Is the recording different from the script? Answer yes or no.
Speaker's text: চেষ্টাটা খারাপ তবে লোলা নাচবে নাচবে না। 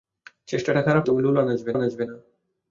no